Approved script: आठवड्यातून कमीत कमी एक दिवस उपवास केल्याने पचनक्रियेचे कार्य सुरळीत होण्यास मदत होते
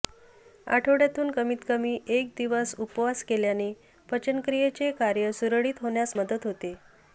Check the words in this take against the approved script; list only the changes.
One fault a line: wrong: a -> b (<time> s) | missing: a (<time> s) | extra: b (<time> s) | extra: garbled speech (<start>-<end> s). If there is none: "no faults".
no faults